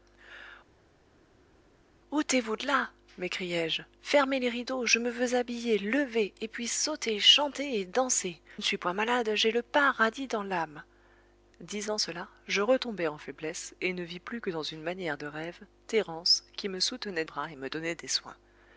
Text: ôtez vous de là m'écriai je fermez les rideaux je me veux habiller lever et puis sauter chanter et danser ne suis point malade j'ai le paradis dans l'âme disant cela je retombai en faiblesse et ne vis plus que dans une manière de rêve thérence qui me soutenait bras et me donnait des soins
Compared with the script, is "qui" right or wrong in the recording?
right